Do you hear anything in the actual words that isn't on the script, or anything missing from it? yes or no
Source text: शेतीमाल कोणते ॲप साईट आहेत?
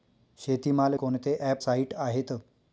no